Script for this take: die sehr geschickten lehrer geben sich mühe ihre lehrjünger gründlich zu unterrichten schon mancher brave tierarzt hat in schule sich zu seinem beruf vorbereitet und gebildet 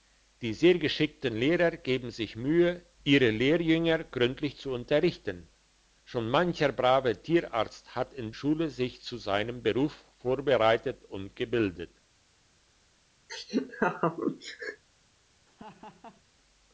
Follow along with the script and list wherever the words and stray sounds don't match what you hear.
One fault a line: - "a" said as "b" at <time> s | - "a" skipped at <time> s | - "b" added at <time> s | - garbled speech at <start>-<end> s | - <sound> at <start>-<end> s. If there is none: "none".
- laugh at 13.3-14.8 s
- laugh at 15.5-16.2 s